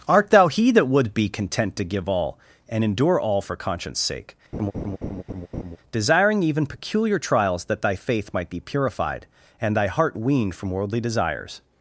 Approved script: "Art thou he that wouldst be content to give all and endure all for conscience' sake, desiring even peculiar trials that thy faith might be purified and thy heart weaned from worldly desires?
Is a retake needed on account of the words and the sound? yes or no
yes